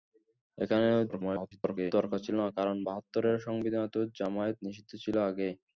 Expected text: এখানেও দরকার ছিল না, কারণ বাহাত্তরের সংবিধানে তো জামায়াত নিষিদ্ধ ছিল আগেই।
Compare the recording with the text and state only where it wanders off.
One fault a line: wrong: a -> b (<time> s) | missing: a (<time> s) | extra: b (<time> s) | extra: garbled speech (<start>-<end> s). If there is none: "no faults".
extra: garbled speech (1.1-1.9 s)